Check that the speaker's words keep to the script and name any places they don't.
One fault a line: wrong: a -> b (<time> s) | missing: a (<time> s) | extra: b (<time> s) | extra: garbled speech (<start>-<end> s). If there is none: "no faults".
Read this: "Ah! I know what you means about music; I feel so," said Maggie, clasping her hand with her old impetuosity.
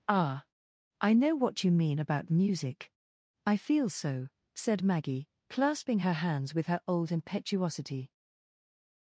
wrong: means -> mean (1.7 s)
wrong: hand -> hands (6.1 s)